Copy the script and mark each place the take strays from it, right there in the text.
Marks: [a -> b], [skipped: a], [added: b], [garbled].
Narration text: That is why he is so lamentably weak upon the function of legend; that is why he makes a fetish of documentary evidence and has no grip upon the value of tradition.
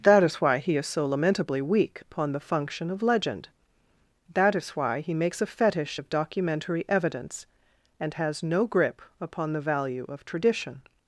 That is why he is so lamentably weak upon the function of legend; that is why he makes a fetish of documentary evidence and has no grip upon the value of tradition.